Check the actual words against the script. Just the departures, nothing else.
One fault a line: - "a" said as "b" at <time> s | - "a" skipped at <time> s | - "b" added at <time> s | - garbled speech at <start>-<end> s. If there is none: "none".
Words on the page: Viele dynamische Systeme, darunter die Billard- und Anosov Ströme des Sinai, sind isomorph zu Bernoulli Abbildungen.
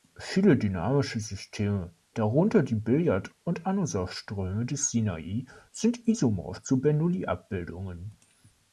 none